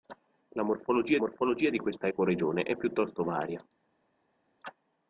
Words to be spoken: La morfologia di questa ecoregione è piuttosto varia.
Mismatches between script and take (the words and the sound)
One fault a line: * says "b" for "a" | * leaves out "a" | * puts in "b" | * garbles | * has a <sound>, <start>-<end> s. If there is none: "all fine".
* puts in "morfologia"